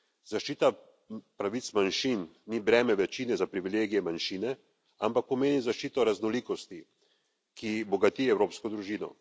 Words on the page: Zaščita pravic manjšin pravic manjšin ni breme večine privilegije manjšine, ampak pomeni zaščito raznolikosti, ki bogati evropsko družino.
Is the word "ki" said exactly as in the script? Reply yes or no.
yes